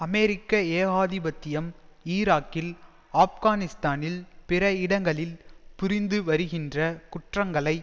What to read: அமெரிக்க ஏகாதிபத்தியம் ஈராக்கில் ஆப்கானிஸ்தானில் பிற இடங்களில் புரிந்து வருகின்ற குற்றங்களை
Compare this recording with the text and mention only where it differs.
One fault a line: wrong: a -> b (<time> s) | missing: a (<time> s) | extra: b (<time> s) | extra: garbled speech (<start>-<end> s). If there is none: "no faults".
no faults